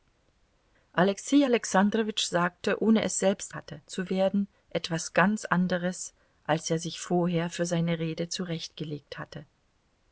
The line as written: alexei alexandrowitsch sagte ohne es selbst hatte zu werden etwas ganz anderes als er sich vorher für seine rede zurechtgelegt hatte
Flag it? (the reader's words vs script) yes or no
no